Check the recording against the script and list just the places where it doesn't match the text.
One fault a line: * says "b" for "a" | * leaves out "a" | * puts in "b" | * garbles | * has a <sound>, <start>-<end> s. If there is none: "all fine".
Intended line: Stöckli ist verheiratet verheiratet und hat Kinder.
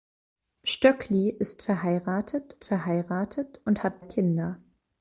all fine